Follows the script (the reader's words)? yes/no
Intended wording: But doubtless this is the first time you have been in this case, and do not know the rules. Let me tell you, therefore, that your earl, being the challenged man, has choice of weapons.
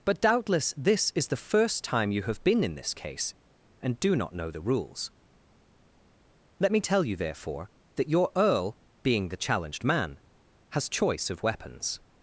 yes